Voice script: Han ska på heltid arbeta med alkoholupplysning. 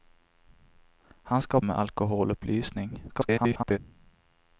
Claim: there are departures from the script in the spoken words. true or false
true